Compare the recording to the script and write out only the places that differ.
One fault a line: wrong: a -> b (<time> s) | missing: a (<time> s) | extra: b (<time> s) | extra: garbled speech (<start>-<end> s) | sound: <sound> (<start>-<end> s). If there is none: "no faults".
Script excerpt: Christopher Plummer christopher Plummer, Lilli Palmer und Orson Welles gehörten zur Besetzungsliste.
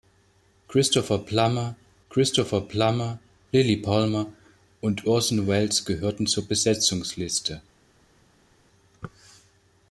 no faults